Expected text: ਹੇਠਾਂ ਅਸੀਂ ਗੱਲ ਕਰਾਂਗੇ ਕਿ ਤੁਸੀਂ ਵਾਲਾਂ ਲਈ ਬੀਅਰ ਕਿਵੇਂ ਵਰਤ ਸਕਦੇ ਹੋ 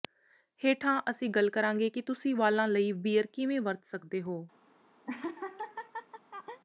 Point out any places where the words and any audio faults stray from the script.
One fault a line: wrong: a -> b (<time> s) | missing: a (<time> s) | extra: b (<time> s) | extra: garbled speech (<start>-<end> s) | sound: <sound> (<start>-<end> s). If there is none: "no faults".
sound: laugh (5.1-6.6 s)